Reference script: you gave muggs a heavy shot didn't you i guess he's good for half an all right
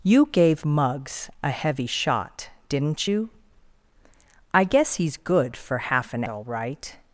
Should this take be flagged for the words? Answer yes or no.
no